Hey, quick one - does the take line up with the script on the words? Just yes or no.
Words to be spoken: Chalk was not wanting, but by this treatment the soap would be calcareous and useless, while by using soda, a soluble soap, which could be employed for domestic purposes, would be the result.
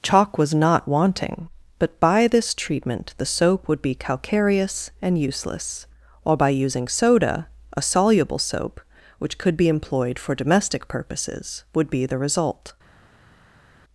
yes